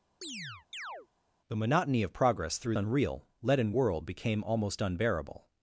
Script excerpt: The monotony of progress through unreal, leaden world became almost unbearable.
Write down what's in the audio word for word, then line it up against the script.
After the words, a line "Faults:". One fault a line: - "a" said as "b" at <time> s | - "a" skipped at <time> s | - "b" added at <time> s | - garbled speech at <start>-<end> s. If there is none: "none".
The monotony of progress through unreal, leaden world became almost unbearable.
Faults:
none